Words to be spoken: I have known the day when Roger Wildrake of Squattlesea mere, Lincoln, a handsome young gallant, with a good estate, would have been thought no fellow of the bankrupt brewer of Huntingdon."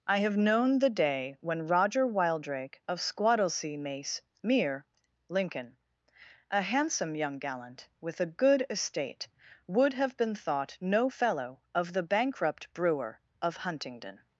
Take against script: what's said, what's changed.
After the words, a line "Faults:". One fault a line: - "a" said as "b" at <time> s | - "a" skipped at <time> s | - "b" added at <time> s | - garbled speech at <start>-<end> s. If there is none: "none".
I have known the day when Roger Wildrake of Squattlesea mace mere, Lincoln, a handsome young gallant, with a good estate, would have been thought no fellow of the bankrupt brewer of Huntingdon."
Faults:
- "mace" added at 3.8 s